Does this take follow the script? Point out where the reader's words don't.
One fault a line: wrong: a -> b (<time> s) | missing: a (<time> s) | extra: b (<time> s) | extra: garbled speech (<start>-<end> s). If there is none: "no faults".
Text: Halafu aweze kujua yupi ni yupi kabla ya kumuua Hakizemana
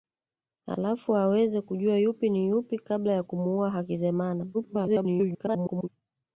extra: garbled speech (4.5-5.9 s)